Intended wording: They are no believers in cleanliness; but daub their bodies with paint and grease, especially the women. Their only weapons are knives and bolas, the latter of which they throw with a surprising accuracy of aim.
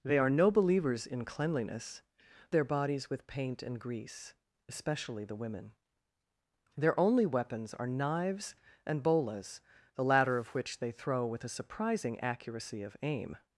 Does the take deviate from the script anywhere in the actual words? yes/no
yes